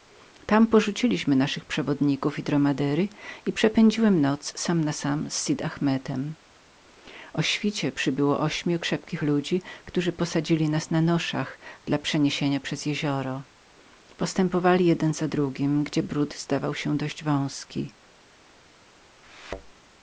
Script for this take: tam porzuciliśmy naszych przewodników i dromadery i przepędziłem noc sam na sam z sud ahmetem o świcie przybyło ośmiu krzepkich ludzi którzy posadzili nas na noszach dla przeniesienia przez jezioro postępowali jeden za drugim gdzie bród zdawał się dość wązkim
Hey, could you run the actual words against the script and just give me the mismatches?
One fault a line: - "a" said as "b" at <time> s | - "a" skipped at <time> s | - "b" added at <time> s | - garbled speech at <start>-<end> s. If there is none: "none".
none